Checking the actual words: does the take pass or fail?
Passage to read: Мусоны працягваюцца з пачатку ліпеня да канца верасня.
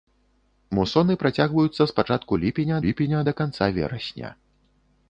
fail